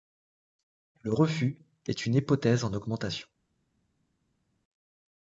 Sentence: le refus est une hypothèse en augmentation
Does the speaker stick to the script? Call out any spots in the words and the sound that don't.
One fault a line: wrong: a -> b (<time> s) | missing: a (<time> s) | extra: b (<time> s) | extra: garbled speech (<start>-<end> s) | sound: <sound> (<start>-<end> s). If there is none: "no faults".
no faults